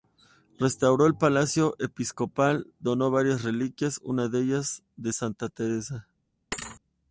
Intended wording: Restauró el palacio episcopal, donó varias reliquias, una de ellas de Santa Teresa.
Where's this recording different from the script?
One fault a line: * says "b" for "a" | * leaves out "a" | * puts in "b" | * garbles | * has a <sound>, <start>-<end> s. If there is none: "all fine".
* has a thud, 6.5-6.8 s